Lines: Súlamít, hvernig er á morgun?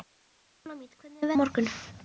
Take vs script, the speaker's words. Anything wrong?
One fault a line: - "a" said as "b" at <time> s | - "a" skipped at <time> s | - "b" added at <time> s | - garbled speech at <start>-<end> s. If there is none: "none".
none